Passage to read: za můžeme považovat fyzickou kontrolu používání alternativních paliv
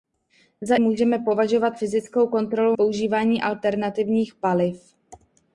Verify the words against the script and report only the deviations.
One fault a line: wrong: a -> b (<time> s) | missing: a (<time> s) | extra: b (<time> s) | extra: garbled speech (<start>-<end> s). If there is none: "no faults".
no faults